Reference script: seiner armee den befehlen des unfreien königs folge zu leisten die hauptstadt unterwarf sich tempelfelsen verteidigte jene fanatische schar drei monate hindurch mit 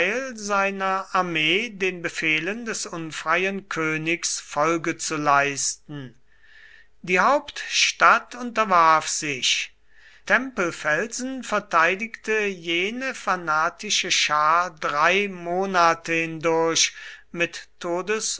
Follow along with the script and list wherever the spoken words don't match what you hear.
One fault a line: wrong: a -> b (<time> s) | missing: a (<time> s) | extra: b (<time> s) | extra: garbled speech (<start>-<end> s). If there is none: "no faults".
no faults